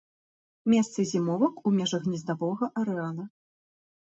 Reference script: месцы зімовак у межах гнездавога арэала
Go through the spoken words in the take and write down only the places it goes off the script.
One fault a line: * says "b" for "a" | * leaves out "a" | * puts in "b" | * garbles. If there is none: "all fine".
all fine